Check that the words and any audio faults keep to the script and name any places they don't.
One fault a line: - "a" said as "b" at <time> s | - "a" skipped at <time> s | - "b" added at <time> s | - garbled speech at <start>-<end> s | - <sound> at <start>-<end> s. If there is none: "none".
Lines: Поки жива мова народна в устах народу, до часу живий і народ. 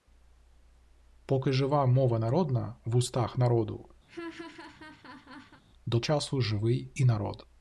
- laugh at 4.1-5.6 s